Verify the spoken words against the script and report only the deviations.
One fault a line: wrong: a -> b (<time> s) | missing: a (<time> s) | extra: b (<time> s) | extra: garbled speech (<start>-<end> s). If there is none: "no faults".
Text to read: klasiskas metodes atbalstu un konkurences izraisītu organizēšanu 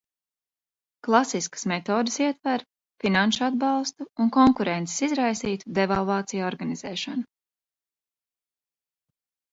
extra: ietver finanšu (2.2 s)
extra: devalvāciju (5.8 s)